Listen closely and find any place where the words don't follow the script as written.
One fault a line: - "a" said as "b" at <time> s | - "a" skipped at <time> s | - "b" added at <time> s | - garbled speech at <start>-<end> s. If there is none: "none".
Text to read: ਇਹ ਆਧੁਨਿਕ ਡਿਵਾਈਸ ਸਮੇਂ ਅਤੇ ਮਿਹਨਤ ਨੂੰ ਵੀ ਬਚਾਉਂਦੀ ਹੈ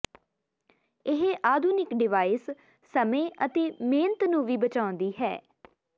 none